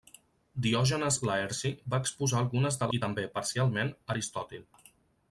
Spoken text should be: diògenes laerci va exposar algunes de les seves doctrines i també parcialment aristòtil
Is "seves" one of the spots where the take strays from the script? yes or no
yes